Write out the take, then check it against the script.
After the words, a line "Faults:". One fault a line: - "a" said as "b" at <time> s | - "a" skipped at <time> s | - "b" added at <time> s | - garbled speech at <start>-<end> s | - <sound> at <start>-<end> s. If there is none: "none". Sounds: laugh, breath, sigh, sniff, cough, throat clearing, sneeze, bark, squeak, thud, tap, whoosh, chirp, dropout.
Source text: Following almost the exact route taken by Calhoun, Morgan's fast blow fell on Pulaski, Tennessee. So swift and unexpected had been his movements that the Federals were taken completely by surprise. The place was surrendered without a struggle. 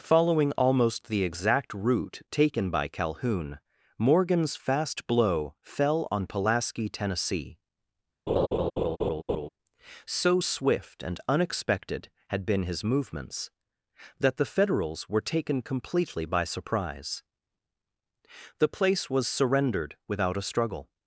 Following almost the exact route taken by Calhoun, Morgan's fast blow fell on Pulaski, Tennessee. So swift and unexpected had been his movements that the Federals were taken completely by surprise. The place was surrendered without a struggle.
Faults:
- laugh at 8.3-9.5 s